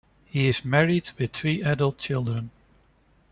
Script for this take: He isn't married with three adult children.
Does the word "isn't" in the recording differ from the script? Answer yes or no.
yes